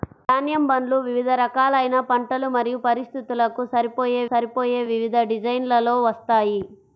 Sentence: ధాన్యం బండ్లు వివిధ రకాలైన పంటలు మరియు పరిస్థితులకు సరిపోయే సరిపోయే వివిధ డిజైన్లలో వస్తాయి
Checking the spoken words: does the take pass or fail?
pass